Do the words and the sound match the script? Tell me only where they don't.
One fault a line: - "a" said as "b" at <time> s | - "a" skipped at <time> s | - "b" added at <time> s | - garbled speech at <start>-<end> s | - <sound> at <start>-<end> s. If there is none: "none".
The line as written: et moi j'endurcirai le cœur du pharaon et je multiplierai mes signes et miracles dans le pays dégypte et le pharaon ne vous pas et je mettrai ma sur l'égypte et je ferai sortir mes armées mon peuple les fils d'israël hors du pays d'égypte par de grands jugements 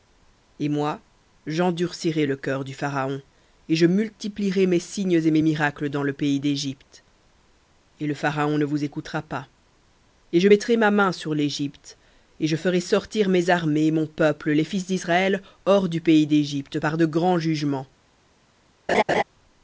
- "mes" added at 5.3 s
- "écoutera" added at 8.8 s
- "main" added at 10.9 s
- laugh at 18.9-19.2 s